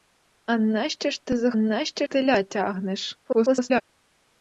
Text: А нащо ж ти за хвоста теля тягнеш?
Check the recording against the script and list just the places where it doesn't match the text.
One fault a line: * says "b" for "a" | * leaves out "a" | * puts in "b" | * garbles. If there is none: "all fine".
* says "нащо" for "хвоста"
* garbles